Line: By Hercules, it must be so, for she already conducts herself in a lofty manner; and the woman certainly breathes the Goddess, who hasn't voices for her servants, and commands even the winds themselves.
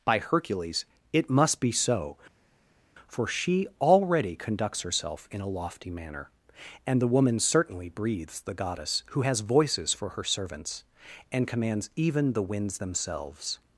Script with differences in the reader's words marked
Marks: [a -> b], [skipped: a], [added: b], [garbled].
By Hercules, it must be so, for she already conducts herself in a lofty manner; and the woman certainly breathes the Goddess, who [hasn't -> has] voices for her servants, and commands even the winds themselves.